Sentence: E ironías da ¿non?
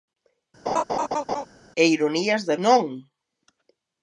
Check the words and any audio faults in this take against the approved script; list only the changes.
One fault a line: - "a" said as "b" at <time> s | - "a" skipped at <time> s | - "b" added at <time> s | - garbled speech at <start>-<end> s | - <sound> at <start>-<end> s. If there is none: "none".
- laugh at 0.7-1.5 s